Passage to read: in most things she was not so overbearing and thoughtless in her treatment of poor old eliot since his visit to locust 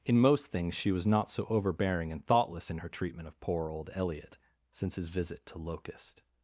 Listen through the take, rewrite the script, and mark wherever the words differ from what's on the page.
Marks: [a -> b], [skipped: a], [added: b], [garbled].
in most things she was not so overbearing and thoughtless in her treatment of poor old eliot since his visit to locust